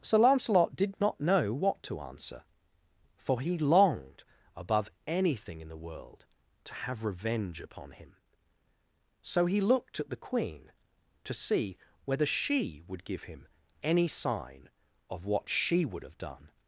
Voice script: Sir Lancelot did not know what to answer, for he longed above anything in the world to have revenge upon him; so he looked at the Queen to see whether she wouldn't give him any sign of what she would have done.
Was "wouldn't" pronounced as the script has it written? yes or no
no